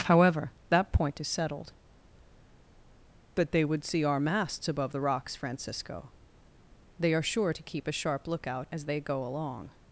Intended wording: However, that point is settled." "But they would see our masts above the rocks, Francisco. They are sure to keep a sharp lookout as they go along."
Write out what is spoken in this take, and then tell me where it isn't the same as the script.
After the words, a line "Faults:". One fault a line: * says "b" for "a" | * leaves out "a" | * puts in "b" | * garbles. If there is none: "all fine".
However, that point is settled." "But they would see our masts above the rocks, Francisco. They are sure to keep a sharp lookout as they go along."
Faults:
all fine